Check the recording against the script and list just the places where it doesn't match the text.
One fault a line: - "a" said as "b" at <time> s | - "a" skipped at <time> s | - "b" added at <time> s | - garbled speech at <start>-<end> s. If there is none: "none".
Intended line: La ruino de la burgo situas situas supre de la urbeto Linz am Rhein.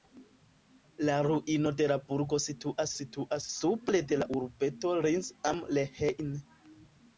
none